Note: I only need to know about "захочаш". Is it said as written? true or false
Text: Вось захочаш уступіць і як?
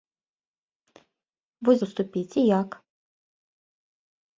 false